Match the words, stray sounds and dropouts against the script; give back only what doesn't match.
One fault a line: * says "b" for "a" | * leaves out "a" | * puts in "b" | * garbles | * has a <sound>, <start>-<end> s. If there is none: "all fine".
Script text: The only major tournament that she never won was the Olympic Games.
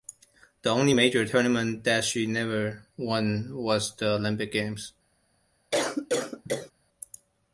* has a cough, 5.7-6.7 s